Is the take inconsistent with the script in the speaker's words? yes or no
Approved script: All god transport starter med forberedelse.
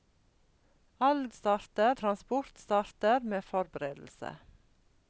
yes